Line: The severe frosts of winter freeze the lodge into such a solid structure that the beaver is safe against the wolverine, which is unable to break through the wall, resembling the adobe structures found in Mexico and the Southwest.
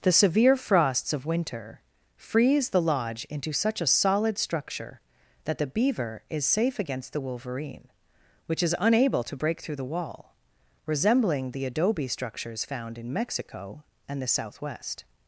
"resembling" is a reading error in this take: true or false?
false